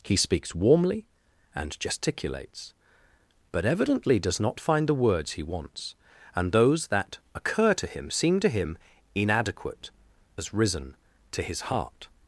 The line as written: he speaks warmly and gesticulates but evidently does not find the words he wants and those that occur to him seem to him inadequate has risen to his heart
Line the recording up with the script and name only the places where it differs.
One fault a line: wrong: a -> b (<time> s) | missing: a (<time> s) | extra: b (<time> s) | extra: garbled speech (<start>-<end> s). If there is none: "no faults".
no faults